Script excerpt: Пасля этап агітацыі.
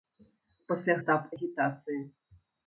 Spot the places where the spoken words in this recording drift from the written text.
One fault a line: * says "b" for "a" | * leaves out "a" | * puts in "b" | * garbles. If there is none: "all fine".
all fine